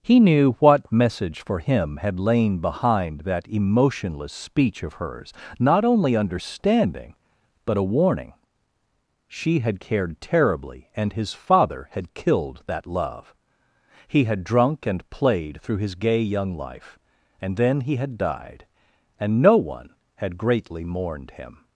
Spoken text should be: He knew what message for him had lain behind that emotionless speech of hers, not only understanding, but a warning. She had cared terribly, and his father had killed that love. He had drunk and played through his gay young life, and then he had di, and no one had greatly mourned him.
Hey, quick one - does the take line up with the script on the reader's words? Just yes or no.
no